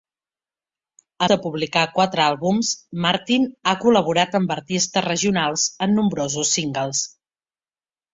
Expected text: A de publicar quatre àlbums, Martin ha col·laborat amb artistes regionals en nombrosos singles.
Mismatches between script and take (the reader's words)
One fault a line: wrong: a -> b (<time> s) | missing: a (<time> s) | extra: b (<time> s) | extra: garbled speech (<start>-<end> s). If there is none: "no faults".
no faults